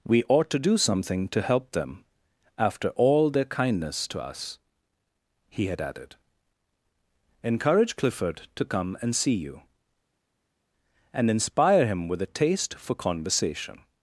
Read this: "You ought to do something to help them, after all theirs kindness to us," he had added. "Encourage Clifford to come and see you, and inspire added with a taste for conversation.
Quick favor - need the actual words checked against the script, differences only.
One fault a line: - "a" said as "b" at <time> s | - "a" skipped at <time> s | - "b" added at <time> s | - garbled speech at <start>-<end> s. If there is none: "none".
- "You" said as "We" at 0.0 s
- "theirs" said as "their" at 3.3 s
- "added" said as "him" at 11.9 s